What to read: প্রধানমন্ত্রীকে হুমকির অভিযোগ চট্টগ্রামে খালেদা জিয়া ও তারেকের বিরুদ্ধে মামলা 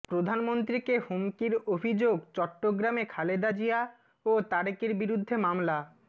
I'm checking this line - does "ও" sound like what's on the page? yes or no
yes